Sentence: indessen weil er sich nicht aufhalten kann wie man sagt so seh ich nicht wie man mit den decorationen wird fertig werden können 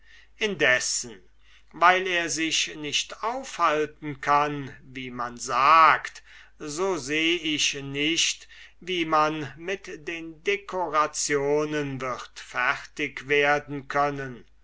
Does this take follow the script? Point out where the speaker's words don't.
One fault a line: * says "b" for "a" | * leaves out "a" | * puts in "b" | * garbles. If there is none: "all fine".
all fine